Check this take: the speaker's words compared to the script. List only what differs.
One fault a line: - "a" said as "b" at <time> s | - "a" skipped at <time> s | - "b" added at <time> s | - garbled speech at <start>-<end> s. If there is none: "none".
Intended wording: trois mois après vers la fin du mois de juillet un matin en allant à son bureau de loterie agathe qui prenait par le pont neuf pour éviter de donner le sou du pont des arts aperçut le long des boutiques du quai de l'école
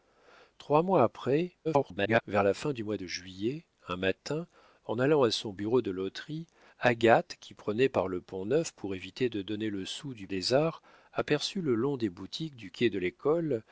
- garbled speech at 1.6-2.2 s
- "pont" skipped at 10.3 s